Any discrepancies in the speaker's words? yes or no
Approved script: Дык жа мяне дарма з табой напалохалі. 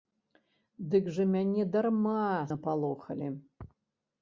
yes